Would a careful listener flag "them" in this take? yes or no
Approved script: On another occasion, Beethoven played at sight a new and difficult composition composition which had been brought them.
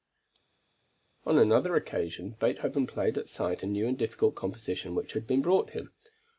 yes